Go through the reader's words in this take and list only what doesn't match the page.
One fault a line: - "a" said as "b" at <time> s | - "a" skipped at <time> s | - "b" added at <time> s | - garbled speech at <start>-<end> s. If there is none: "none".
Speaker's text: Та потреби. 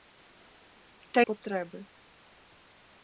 none